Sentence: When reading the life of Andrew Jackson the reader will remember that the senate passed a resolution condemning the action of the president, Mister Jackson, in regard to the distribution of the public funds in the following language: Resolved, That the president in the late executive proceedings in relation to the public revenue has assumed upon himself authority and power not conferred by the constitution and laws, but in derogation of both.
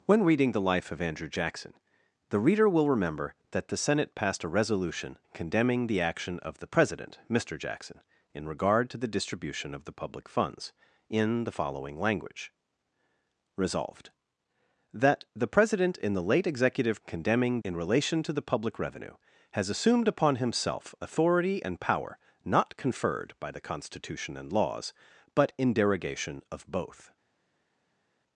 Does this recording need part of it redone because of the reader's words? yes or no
yes